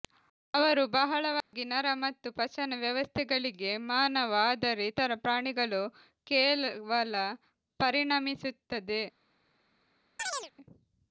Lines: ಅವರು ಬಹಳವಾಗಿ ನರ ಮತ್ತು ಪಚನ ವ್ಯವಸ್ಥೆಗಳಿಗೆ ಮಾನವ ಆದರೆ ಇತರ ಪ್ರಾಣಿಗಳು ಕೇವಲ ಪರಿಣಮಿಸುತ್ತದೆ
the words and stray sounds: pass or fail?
fail